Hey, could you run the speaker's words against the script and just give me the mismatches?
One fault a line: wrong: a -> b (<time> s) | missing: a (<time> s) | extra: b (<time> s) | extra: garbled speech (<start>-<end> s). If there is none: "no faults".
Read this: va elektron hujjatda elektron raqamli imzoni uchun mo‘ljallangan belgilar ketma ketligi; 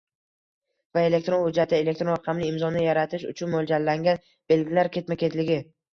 extra: yaratish (2.9 s)